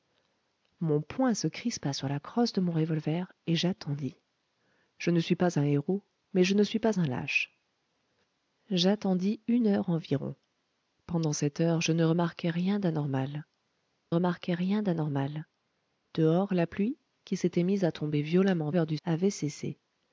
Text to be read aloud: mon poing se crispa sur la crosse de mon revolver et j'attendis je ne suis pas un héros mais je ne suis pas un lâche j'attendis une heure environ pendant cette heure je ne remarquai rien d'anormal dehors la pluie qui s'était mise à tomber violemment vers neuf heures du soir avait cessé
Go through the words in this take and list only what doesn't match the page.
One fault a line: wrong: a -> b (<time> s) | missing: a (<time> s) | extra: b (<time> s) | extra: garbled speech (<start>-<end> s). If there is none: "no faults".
extra: remarquai rien d'anormal (14.1 s)
missing: vers neuf (18.7 s)
missing: soir (19.0 s)